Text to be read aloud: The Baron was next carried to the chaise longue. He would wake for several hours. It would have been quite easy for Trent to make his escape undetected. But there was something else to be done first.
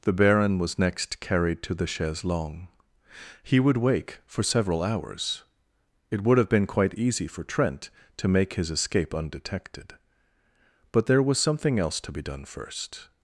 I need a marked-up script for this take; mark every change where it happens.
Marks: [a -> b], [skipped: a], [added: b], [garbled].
The Baron was next carried to the chaise longue. He would wake for several hours. It would have been quite easy for Trent to make his escape undetected. But there was something else to be done first.